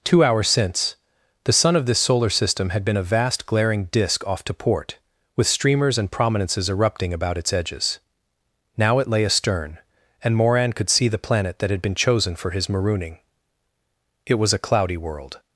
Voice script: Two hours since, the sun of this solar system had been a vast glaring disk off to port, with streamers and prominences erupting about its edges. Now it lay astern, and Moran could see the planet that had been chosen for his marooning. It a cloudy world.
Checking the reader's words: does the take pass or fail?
fail